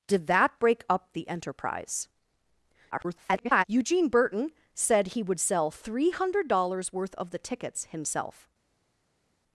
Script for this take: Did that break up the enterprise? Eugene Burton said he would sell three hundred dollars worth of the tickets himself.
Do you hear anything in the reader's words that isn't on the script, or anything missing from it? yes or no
yes